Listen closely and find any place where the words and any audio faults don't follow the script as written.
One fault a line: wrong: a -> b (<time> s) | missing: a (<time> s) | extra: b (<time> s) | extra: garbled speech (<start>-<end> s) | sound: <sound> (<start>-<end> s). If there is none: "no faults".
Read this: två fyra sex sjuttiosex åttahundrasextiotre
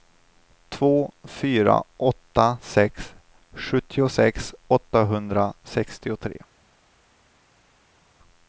extra: åtta (2.0 s)